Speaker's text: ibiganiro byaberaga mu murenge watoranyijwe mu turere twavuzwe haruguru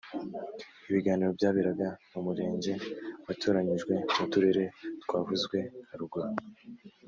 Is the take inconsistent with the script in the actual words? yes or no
no